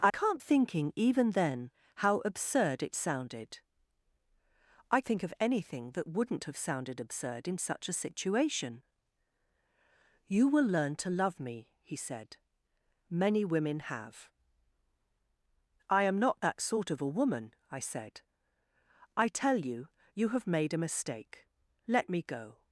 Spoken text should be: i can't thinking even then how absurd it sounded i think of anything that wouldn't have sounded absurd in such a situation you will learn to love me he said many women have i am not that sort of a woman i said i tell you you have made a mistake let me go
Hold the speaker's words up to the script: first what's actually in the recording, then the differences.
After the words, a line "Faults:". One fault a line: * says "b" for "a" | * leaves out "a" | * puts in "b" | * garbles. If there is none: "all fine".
i can't thinking even then how absurd it sounded i think of anything that wouldn't have sounded absurd in such a situation you will learn to love me he said many women have i am not that sort of a woman i said i tell you you have made a mistake let me go
Faults:
all fine